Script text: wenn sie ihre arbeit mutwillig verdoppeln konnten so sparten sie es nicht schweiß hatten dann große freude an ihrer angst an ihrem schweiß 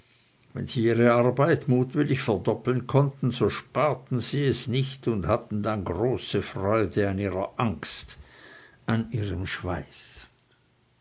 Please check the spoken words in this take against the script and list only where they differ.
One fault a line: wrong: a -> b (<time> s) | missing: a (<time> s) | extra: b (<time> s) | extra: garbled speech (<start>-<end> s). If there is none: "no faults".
wrong: schweiß -> und (5.1 s)